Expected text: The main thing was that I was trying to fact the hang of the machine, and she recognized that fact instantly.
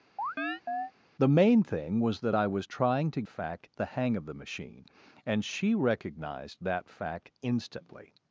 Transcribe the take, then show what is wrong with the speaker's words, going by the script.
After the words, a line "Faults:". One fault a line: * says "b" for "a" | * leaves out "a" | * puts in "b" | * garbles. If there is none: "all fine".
The main thing was that I was trying to fact the hang of the machine, and she recognized that fact instantly.
Faults:
all fine